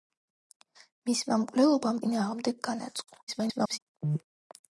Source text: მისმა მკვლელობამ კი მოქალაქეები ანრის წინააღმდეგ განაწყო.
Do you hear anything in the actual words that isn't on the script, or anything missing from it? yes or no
yes